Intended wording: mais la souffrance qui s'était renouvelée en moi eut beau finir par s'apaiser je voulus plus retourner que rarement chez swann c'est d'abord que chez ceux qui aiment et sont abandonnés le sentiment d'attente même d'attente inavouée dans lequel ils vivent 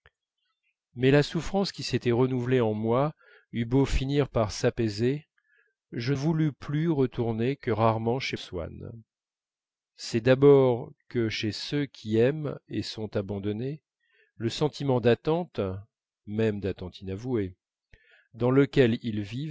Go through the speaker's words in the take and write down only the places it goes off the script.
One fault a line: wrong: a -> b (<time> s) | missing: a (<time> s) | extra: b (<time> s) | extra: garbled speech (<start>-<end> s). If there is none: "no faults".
no faults